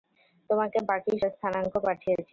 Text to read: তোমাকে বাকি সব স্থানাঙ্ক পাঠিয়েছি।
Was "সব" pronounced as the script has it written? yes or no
no